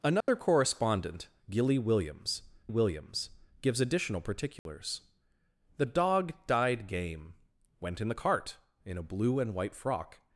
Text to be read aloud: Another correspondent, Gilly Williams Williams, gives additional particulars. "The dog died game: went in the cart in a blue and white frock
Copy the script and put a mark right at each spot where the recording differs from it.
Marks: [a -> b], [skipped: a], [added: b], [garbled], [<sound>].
Another [dropout] correspondent, Gilly Williams Williams, gives additional particulars. [dropout] "The dog died game: went in the cart in a blue and white frock